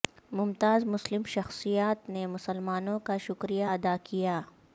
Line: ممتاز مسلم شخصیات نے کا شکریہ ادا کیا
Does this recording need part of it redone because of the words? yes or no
yes